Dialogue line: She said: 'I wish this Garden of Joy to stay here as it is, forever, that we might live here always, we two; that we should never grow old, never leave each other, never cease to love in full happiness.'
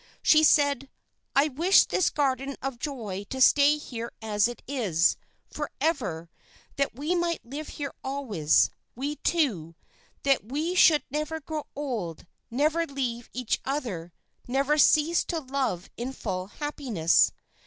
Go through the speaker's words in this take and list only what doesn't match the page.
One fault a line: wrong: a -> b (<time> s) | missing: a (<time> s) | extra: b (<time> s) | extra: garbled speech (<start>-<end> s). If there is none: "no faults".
no faults